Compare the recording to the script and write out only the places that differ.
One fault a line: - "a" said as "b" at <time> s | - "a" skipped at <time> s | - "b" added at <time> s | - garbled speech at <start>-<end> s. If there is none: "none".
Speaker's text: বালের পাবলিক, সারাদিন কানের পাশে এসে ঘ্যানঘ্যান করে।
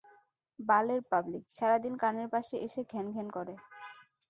none